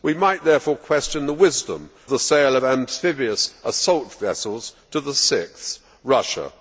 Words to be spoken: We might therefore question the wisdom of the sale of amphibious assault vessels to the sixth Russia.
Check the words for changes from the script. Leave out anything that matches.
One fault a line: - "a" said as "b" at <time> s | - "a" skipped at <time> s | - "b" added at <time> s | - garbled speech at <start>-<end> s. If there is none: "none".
- "of" skipped at 1.9 s